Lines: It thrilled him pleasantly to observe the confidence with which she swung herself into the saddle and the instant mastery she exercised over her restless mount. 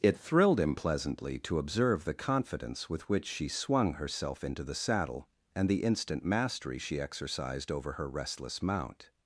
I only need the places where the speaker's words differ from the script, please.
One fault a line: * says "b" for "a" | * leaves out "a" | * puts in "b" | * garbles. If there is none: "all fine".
all fine